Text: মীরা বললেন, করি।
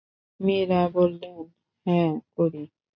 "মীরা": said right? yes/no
yes